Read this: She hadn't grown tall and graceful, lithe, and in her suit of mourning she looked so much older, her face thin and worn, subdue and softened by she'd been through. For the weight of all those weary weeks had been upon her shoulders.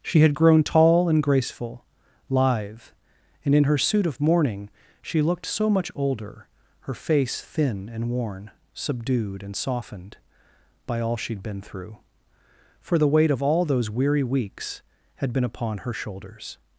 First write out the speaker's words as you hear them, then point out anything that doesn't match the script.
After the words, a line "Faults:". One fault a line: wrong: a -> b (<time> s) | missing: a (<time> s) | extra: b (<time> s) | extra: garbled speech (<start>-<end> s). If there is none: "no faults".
She had grown tall and graceful, lithe, and in her suit of mourning she looked so much older, her face thin and worn, subdued and softened by all she'd been through. For the weight of all those weary weeks had been upon her shoulders.
Faults:
wrong: hadn't -> had (0.2 s)
wrong: subdue -> subdued (8.7 s)
extra: all (11.0 s)